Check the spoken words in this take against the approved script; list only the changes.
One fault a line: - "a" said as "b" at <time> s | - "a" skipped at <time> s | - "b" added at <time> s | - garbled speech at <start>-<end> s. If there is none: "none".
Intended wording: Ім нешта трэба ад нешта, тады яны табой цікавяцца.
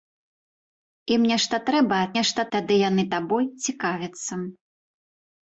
none